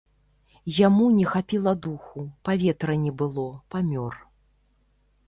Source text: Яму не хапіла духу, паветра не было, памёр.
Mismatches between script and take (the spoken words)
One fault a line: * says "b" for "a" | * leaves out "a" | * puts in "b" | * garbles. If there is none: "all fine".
all fine